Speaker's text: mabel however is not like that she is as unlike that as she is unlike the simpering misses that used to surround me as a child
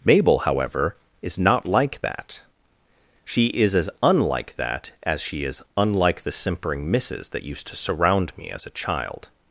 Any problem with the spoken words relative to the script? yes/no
no